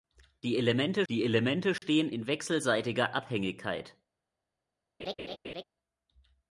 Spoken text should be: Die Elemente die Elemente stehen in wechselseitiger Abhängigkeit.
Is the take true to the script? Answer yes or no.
yes